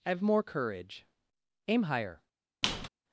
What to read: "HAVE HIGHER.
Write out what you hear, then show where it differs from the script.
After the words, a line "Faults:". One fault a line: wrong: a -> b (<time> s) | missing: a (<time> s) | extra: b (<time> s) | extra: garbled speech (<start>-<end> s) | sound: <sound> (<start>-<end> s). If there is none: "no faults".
"HAVE MORE COURAGE. AIM HIGHER.
Faults:
extra: MORE COURAGE AIM (0.2 s)
sound: squeak (2.6-2.9 s)